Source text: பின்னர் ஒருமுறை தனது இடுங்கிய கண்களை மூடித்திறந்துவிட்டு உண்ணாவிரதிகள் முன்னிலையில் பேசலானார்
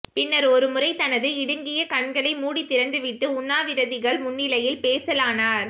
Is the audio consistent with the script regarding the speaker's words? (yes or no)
yes